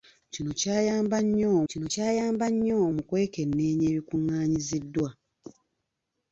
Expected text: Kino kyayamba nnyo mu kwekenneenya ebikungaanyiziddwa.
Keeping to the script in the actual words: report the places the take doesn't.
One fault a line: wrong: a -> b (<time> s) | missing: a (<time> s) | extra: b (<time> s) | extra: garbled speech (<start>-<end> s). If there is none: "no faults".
extra: kino kyayamba nnyo (1.7 s)